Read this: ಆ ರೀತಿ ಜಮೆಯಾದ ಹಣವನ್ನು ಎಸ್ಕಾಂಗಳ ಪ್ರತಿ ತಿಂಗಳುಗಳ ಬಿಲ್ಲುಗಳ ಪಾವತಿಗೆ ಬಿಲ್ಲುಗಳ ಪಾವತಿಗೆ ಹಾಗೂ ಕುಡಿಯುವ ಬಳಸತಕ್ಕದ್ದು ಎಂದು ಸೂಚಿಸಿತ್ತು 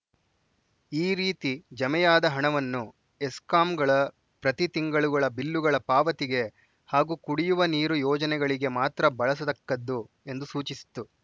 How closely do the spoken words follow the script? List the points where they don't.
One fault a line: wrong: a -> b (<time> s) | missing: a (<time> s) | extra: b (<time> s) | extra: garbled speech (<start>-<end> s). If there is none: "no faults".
wrong: ಆ -> ಈ (0.9 s)
wrong: ಬಿಲ್ಲುಗಳ ಪಾವತಿಗೆ ಹಾಗೂ ಕುಡಿಯುವ -> ಹಾಗೂ ಕುಡಿಯುವ ನೀರು ಯೋಜನೆಗಳಿಗೆ ಮಾತ್ರ (6.9 s)